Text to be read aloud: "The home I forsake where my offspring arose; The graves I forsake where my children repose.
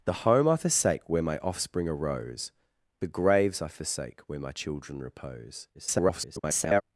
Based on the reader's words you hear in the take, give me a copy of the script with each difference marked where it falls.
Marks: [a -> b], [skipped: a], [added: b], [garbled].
"The home I forsake where my offspring arose; The graves I forsake where my children repose. [garbled]